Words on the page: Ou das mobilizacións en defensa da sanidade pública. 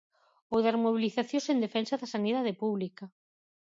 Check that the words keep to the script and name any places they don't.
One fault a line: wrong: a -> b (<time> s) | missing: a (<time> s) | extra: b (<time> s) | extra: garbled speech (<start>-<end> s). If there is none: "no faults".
no faults